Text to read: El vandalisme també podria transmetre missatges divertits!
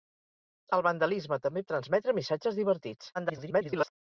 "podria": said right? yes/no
no